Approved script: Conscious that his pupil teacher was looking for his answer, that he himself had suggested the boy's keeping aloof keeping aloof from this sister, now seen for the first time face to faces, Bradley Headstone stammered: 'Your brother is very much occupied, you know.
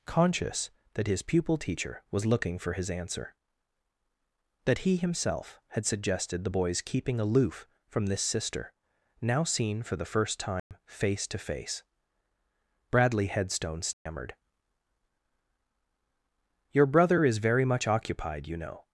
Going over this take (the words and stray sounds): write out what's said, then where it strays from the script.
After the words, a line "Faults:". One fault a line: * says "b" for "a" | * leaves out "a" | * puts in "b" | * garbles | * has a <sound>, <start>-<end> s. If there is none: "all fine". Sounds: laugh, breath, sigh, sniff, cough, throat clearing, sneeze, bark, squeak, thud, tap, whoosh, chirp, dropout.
Conscious that his pupil teacher was looking for his answer, that he himself had suggested the boy's keeping aloof from this sister, now seen for the first time face to face, Bradley Headstone stammered: 'Your brother is very much occupied, you know.
Faults:
* leaves out "keeping aloof"
* has a dropout, 10.6-10.7 s
* says "face" for "faces"
* has a dropout, 13.9-14.1 s